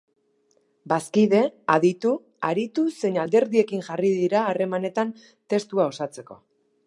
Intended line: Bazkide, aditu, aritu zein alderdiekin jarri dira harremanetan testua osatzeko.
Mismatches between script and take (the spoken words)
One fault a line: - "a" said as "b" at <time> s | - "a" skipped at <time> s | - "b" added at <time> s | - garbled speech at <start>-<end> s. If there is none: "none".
none